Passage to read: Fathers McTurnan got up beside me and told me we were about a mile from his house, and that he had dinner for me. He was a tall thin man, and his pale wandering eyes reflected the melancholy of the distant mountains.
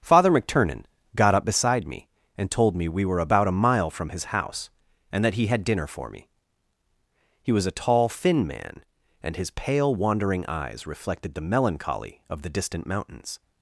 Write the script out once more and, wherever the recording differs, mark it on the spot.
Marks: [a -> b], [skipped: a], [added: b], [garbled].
[Fathers -> Father] McTurnan got up beside me and told me we were about a mile from his house, and that he had dinner for me. He was a tall thin man, and his pale wandering eyes reflected the melancholy of the distant mountains.